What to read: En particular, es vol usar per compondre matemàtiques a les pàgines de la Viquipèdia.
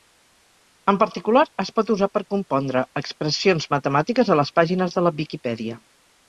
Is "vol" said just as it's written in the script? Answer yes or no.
no